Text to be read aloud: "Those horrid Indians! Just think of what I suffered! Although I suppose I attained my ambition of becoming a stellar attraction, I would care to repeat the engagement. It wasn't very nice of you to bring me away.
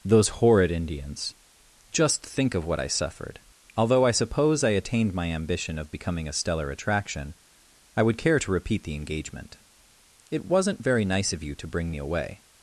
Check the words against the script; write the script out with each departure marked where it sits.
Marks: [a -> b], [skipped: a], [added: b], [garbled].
"Those horrid Indians! Just think of what I suffered! Although I suppose I attained my ambition of becoming a stellar attraction, I would care to repeat the engagement. It wasn't very nice of you to bring me away.